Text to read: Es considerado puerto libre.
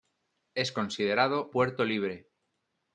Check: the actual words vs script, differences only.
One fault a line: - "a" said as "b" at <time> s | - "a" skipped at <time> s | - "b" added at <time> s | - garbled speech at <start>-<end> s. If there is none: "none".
none